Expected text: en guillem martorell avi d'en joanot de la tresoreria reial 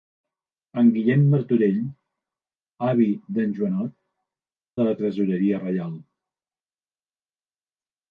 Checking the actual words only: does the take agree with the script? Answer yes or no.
yes